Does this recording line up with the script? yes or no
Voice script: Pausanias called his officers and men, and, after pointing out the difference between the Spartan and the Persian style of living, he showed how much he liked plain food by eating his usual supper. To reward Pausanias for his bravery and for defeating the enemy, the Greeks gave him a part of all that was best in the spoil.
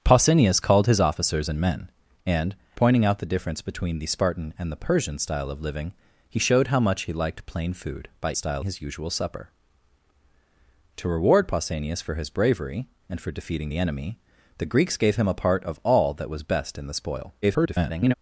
no